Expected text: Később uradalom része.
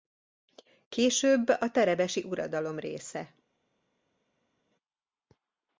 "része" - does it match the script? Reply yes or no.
yes